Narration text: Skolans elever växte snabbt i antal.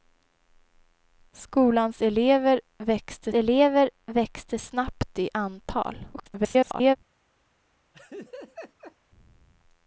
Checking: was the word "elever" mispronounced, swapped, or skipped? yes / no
no